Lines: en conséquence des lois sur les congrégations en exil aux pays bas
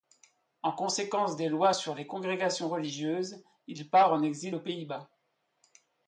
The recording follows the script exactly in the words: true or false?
false